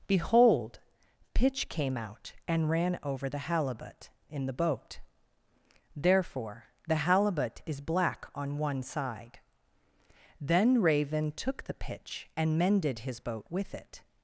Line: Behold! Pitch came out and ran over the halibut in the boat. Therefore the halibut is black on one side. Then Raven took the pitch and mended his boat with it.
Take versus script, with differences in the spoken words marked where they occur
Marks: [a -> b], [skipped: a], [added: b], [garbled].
Behold! Pitch came out and ran over the halibut in the boat. Therefore the halibut is black on one side. Then Raven took the pitch and mended his boat with it.